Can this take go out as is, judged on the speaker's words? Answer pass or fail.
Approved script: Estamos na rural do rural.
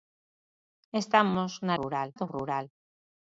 pass